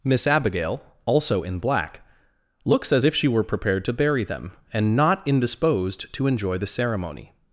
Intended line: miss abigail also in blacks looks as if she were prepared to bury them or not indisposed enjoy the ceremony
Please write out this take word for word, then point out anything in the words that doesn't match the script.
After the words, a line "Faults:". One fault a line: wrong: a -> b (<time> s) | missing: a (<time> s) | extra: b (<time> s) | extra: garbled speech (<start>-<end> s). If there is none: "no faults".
miss abigail also in black looks as if she were prepared to bury them and not indisposed to enjoy the ceremony
Faults:
wrong: blacks -> black (1.6 s)
wrong: or -> and (4.7 s)
extra: to (6.1 s)